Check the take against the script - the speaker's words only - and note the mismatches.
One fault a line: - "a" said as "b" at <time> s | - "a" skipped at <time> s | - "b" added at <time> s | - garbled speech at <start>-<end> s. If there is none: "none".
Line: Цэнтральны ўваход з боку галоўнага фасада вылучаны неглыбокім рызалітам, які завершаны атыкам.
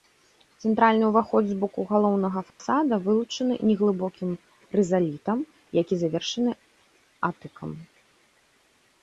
none